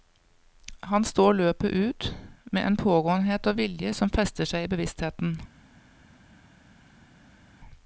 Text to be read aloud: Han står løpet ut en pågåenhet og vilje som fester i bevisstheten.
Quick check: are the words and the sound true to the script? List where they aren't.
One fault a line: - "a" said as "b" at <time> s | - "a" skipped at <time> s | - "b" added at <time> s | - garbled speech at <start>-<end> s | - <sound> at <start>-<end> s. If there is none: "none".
- "med" added at 2.5 s
- "seg" added at 4.4 s